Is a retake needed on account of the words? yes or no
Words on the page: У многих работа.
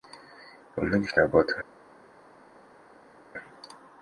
no